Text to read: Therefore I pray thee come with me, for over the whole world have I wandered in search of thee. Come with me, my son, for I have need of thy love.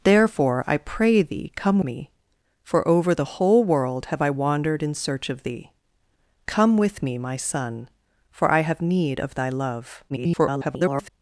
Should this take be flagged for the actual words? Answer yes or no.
yes